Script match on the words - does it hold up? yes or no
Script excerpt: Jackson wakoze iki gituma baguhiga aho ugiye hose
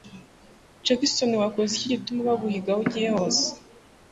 yes